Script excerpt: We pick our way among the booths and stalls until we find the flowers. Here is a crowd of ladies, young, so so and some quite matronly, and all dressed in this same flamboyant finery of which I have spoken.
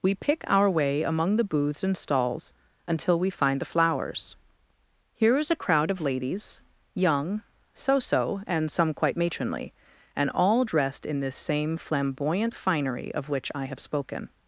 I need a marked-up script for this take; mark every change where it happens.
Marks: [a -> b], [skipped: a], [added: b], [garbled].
We pick our way among the booths and stalls until we find the flowers. Here is a crowd of ladies, young, so so and some quite matronly, and all dressed in this same flamboyant finery of which I have spoken.